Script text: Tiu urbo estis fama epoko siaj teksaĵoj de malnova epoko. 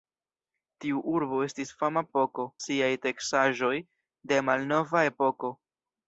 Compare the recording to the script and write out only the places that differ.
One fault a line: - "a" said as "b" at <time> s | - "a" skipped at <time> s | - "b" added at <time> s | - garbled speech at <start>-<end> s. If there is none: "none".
none